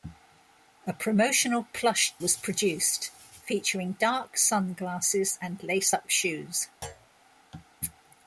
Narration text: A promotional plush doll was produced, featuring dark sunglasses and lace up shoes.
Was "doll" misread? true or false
true